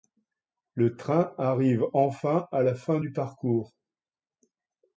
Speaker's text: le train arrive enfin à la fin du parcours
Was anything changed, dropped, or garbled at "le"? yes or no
no